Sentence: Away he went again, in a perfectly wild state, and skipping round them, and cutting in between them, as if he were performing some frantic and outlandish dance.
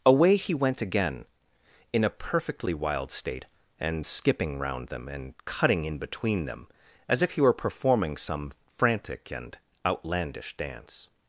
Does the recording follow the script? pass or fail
pass